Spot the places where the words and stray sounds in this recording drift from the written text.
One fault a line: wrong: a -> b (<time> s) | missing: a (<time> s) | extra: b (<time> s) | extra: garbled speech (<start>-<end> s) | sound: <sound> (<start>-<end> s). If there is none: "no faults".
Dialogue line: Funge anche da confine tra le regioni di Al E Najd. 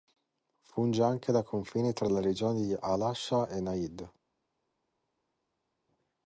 extra: Asha (3.0 s)